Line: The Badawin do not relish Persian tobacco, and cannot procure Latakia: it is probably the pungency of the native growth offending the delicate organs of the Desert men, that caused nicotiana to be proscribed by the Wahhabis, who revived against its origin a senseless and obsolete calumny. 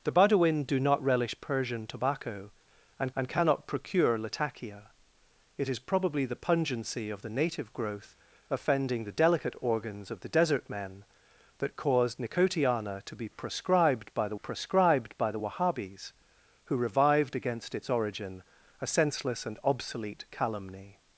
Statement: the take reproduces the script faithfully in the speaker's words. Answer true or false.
false